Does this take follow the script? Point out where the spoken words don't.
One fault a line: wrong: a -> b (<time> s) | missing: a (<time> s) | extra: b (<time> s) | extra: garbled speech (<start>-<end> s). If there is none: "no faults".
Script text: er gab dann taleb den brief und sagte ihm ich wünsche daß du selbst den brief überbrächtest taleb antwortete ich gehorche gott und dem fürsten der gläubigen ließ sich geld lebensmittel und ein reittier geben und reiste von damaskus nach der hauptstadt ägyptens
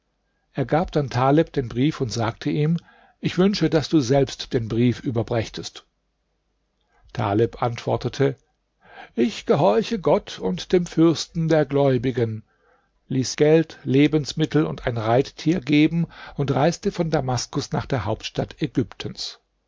missing: sich (13.3 s)